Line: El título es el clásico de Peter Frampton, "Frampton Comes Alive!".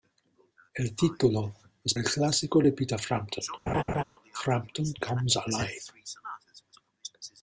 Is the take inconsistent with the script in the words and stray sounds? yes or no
yes